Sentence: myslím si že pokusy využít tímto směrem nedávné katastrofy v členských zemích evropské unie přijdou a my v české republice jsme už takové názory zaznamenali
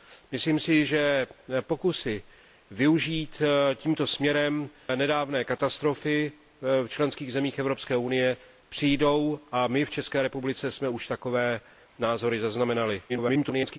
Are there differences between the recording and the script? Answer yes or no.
yes